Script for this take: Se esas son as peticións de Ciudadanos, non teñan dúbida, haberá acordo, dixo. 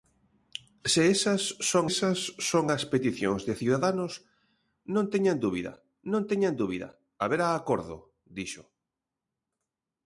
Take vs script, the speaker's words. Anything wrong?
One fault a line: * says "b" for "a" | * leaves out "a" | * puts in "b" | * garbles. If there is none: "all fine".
* puts in "esas son"
* puts in "non teñan dúbida"